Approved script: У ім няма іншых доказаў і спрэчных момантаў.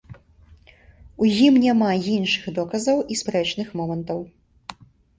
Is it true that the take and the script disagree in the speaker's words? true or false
false